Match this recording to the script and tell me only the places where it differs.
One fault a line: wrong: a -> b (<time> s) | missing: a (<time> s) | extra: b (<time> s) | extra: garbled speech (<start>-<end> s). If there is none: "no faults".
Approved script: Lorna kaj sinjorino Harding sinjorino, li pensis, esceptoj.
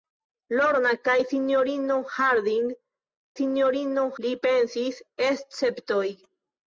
no faults